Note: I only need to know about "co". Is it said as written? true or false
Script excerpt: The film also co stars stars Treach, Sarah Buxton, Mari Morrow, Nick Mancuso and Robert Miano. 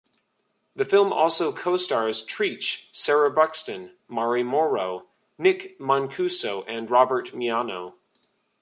true